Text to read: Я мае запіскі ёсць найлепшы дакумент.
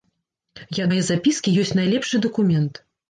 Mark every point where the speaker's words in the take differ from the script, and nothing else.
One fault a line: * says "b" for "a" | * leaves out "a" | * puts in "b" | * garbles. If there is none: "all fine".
all fine